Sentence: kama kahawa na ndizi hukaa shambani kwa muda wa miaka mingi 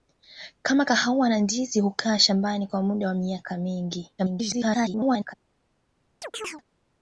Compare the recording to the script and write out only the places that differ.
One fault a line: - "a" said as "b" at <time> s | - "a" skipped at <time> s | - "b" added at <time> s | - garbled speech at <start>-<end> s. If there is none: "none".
- garbled speech at 4.2-5.3 s